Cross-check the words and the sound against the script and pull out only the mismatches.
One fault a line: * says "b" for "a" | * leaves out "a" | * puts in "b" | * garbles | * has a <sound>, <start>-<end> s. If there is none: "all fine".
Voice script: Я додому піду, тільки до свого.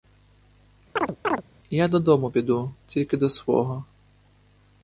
* has a chirp, 1.0-1.4 s